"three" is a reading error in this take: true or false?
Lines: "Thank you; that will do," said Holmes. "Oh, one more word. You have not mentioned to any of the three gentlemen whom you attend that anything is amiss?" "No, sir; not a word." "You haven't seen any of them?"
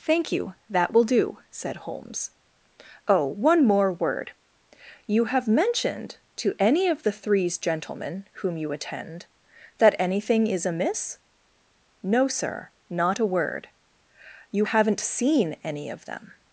true